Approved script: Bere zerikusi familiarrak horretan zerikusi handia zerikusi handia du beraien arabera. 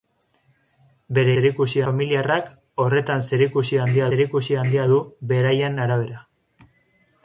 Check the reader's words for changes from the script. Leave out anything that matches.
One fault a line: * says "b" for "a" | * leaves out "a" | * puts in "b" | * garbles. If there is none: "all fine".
all fine